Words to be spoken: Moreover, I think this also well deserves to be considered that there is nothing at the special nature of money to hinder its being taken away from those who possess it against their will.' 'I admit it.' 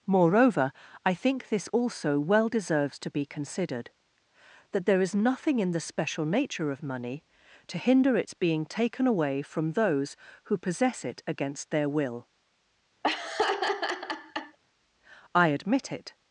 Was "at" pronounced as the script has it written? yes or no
no